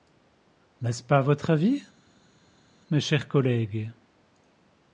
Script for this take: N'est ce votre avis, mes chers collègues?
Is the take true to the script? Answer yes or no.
no